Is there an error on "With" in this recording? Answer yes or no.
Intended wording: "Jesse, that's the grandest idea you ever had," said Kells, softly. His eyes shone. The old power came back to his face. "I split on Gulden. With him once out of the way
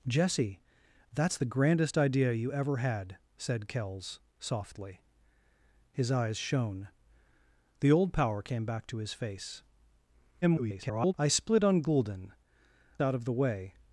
yes